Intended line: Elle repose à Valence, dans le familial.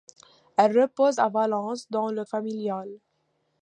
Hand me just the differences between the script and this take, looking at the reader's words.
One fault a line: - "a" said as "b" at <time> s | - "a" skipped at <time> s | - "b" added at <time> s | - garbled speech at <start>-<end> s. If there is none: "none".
none